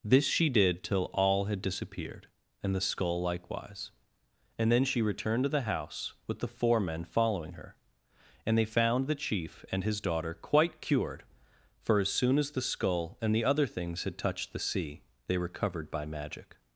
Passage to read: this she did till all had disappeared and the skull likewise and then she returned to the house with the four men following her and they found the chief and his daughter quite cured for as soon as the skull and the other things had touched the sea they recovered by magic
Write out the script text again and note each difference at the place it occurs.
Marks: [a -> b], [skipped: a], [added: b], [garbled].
this she did till all had disappeared and the skull likewise and then she returned to the house with the four men following her and they found the chief and his daughter quite cured for as soon as the skull and the other things had touched the sea they recovered by magic